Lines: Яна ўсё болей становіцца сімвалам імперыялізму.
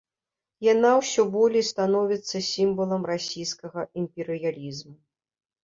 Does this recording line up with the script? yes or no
no